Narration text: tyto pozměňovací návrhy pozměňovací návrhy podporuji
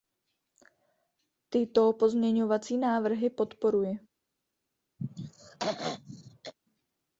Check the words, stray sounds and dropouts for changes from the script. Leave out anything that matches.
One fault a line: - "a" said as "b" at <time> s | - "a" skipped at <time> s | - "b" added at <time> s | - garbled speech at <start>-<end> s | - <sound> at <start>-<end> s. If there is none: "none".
- "pozměňovací návrhy" skipped at 3.3 s
- throat clearing at 5.0-6.5 s